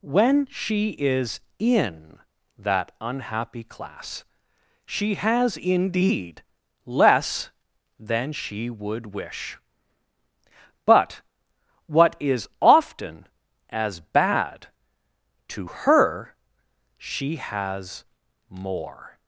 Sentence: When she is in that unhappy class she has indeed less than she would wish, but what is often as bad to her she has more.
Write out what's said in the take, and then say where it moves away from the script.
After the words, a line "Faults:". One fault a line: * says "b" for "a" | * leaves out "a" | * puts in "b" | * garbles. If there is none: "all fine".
When she is in that unhappy class she has indeed less than she would wish, but what is often as bad to her she has more.
Faults:
all fine